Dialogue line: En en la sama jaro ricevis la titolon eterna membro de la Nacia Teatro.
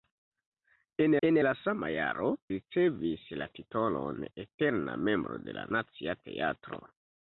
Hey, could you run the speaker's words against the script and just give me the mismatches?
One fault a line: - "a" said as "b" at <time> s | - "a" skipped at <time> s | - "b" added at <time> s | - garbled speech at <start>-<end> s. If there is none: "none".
none